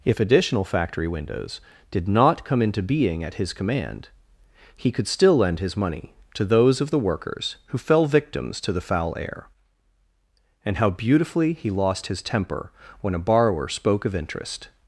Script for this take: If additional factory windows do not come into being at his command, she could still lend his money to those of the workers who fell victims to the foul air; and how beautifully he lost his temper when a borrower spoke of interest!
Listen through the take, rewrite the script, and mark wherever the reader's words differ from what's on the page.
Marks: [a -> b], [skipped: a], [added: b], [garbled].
If additional factory windows [do -> did] not come into being at his command, [she -> he] could still lend his money to those of the workers who fell victims to the foul air; and how beautifully he lost his temper when a borrower spoke of interest!